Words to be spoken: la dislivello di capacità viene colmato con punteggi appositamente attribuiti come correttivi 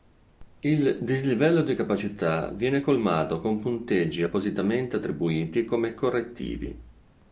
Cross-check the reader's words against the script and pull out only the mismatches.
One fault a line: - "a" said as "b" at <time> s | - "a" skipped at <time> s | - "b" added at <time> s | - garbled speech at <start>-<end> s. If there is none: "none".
- "la" said as "il" at 0.6 s